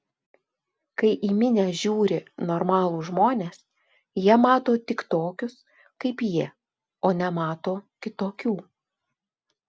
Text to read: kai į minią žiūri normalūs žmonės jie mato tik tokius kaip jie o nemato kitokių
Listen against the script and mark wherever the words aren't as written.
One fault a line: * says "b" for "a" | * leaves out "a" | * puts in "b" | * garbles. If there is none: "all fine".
all fine